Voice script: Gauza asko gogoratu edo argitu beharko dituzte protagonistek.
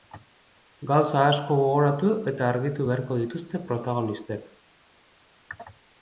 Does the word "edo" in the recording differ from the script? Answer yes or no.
yes